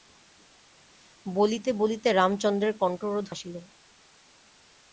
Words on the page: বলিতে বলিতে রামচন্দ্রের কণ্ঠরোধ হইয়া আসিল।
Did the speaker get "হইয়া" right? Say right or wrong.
wrong